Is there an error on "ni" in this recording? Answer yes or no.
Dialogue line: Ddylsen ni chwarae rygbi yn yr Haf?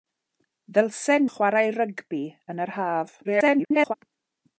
yes